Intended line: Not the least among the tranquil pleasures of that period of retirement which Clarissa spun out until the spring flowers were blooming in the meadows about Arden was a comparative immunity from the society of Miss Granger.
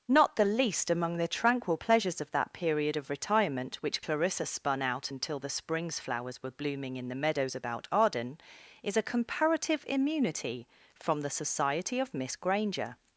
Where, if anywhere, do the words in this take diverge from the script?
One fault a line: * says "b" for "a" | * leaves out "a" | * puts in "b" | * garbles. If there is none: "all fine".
* says "springs" for "spring"
* says "is" for "was"